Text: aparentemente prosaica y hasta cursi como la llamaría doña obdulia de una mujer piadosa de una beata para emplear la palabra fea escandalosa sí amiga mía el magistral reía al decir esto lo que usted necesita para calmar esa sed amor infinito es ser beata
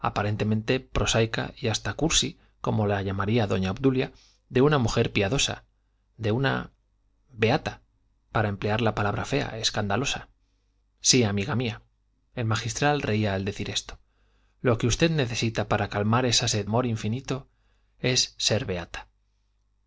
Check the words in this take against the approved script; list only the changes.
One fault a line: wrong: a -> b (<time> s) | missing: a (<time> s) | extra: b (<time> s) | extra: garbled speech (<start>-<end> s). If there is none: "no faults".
no faults